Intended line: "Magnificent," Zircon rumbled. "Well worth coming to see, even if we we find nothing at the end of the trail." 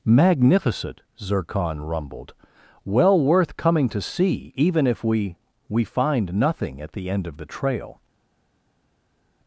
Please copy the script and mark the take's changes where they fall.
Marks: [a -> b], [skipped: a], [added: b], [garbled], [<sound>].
"Magnificent," Zircon rumbled. "Well worth coming to see, even if we we find nothing at the end of the trail."